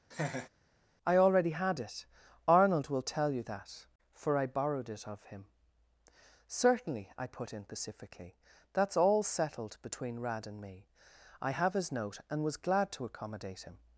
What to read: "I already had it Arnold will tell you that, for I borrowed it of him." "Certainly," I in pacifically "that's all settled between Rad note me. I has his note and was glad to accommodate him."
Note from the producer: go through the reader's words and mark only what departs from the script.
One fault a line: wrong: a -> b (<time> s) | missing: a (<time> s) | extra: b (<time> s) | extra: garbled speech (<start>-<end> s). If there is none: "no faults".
extra: put (7.3 s)
wrong: note -> and (10.5 s)
wrong: has -> have (11.5 s)